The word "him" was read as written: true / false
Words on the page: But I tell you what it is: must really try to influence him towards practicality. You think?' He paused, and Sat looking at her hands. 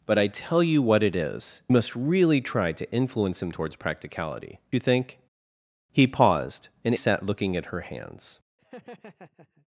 true